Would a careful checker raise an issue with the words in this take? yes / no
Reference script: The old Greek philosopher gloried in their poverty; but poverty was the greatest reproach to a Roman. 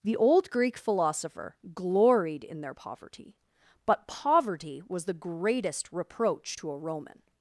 no